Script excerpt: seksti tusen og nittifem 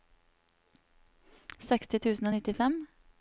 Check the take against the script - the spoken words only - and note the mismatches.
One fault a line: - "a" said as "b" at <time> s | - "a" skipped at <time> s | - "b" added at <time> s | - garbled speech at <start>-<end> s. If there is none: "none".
none